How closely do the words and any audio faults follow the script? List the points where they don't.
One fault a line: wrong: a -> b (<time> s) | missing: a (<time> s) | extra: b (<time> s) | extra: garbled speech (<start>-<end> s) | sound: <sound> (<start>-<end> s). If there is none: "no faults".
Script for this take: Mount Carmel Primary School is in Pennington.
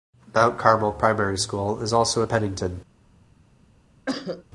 extra: also (1.9 s)
sound: cough (4.1-4.4 s)